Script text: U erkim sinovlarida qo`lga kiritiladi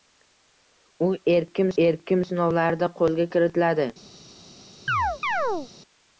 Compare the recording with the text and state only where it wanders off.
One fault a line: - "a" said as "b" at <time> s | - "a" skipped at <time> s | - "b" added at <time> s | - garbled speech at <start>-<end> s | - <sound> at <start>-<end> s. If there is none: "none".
- "erkim" added at 1.8 s
- chirp at 4.9-5.7 s